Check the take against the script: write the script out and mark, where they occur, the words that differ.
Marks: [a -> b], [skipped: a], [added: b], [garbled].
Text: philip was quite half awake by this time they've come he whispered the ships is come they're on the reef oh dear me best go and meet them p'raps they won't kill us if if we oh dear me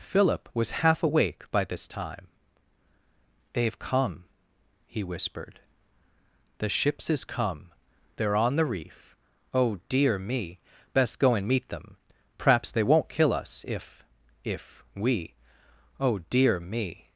philip was [skipped: quite] half awake by this time they've come he whispered the ships is come they're on the reef oh dear me best go and meet them p'raps they won't kill us if if we oh dear me